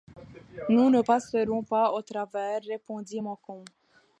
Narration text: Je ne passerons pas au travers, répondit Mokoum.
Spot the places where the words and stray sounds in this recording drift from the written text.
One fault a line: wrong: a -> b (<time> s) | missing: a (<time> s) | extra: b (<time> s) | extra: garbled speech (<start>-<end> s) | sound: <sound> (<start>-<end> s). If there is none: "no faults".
wrong: Je -> Nous (0.7 s)